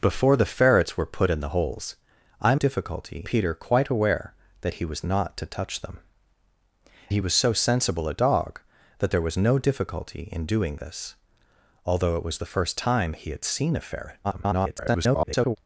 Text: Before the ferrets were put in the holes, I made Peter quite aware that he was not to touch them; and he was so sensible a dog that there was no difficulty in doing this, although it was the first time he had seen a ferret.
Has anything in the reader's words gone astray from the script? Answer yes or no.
yes